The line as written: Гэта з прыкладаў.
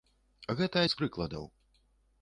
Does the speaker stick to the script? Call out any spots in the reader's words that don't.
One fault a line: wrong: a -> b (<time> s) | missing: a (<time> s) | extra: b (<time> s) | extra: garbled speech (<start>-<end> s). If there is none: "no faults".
no faults